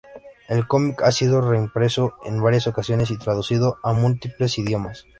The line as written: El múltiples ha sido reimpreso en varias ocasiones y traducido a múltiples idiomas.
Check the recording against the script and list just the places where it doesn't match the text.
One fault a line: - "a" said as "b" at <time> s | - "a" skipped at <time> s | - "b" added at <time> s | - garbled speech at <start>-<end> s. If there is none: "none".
- "múltiples" said as "cómic" at 0.7 s